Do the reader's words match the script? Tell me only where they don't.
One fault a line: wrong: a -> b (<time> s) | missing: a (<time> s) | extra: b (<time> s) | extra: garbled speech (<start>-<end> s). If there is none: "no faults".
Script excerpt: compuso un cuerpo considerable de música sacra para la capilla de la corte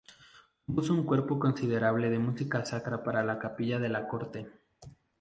no faults